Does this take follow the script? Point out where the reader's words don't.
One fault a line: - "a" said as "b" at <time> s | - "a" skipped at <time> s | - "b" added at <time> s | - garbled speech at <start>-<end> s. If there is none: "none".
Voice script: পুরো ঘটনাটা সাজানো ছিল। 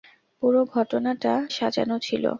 none